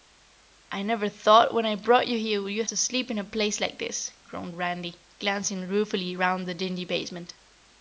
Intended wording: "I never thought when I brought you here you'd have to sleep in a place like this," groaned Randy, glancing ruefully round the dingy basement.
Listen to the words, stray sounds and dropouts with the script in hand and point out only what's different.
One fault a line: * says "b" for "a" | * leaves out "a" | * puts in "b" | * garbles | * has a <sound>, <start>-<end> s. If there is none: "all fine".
* leaves out "have"